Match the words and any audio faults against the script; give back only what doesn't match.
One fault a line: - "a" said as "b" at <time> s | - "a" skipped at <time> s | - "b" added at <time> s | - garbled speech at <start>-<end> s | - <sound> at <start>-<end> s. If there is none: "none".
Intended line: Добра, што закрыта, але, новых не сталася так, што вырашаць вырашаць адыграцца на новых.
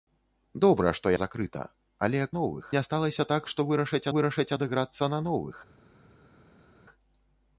none